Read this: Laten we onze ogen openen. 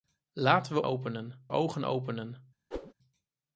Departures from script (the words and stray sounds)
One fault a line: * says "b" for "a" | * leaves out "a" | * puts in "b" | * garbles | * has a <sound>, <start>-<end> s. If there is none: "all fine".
* says "openen" for "onze"
* has a whoosh, 2.7-2.9 s